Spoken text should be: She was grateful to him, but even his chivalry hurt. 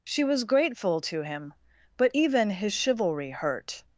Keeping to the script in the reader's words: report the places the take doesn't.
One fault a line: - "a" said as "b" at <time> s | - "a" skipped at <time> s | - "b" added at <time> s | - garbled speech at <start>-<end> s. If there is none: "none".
none